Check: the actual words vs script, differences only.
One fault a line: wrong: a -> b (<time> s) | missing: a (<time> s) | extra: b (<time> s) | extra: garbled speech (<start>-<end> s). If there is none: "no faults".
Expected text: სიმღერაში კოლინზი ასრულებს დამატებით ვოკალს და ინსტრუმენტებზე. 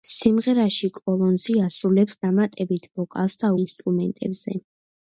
no faults